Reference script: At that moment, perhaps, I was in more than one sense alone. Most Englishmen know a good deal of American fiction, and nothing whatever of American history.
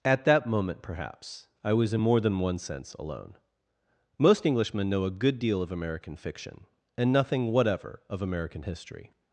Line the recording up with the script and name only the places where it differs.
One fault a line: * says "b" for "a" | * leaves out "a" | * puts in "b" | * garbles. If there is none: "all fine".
all fine